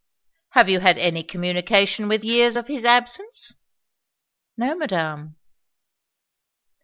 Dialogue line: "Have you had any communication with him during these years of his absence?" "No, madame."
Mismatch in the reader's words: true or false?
true